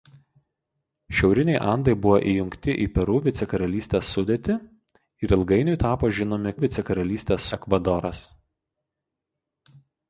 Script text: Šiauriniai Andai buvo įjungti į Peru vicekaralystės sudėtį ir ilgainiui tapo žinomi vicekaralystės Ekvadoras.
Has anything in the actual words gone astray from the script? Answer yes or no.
no